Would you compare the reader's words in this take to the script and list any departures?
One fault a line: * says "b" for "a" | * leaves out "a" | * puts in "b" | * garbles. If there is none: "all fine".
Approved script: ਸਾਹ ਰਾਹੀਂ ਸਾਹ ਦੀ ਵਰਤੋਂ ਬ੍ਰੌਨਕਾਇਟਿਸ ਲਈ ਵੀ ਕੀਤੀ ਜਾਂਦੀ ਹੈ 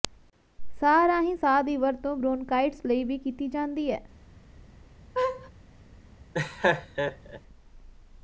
all fine